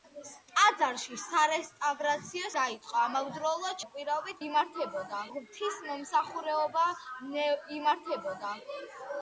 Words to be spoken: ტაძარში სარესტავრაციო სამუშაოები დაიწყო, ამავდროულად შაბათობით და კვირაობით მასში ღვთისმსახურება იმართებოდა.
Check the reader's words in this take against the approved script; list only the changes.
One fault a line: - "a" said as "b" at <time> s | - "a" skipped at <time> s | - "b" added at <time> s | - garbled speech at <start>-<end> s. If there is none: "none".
- "სამუშაოები" skipped at 2.5 s
- "შაბათობით" skipped at 3.8 s
- "მასში" said as "იმართებოდა" at 4.5 s